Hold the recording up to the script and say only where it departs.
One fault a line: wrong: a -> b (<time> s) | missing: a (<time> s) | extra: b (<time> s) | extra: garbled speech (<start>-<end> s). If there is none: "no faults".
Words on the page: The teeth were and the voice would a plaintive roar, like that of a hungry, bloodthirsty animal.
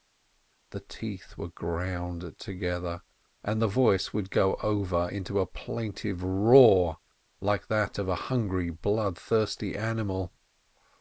extra: ground together (1.5 s)
extra: go over into (4.3 s)